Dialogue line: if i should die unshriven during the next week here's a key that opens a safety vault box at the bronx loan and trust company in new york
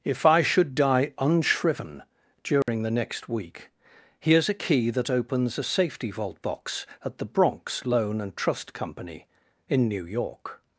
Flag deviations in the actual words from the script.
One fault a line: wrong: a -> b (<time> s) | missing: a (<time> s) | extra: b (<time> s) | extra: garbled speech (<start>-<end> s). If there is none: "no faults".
no faults